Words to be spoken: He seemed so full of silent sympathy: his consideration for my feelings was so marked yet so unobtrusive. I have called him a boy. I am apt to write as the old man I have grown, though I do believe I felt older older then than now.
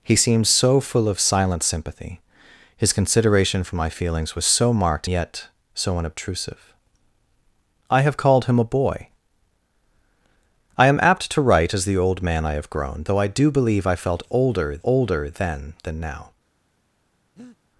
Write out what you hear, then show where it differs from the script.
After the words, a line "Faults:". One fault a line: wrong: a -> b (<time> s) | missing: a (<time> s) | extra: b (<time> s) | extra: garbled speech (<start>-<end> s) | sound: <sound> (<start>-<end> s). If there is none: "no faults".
He seemed so full of silent sympathy: his consideration for my feelings was so marked yet so unobtrusive. I have called him a boy. I am apt to write as the old man I have grown, though I do believe I felt older older then than now.
Faults:
sound: breath (17.4-17.6 s)